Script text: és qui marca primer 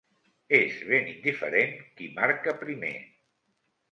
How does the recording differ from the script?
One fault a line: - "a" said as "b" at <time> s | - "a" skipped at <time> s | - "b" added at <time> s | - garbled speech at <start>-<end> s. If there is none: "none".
- "ben indiferent" added at 0.9 s